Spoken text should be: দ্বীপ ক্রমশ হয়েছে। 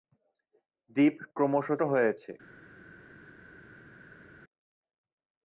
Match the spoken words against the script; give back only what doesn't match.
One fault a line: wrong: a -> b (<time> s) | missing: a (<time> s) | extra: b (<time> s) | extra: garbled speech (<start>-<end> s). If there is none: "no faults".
no faults